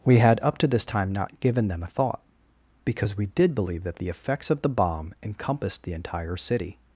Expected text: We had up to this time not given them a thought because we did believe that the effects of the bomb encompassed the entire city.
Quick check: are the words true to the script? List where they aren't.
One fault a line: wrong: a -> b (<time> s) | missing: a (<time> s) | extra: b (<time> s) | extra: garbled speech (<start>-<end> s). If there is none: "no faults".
no faults